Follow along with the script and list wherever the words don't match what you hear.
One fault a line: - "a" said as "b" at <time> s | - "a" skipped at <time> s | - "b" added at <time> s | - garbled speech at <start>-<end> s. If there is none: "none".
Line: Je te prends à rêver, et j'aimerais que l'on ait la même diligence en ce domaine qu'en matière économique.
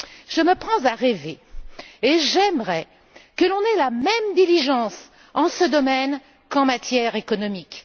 - "te" said as "me" at 0.4 s